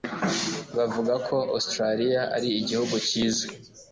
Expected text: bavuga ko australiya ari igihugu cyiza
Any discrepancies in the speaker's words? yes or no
no